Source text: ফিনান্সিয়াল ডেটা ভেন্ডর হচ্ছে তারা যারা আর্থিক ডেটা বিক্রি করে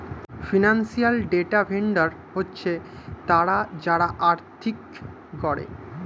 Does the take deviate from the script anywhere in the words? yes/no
yes